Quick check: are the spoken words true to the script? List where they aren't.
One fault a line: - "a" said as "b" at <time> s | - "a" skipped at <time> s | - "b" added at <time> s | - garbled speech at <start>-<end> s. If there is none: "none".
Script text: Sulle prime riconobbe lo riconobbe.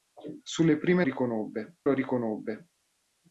none